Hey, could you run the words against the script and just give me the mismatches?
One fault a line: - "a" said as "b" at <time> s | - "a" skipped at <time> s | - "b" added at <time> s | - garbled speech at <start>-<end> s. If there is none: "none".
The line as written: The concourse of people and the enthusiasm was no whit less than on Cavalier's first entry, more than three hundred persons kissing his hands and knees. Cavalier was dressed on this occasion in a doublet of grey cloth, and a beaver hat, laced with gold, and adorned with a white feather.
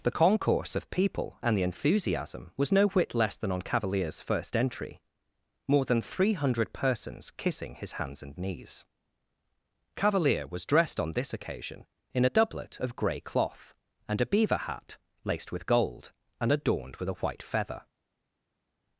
none